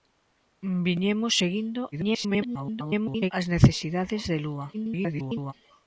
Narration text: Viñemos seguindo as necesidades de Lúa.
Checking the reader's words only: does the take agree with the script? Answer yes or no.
no